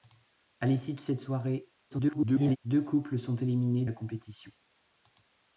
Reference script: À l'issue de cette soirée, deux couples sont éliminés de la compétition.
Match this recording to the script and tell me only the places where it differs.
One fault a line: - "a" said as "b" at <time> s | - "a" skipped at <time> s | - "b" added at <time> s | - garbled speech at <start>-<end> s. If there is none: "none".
- garbled speech at 1.9-2.6 s
- "de" skipped at 3.8 s